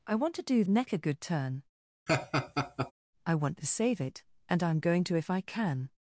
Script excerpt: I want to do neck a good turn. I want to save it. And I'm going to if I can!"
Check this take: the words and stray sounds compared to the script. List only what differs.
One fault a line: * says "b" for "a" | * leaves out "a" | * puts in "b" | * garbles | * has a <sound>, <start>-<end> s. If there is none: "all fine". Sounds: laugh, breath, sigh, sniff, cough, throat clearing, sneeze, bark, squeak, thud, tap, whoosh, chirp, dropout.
* has a laugh, 2.1-2.9 s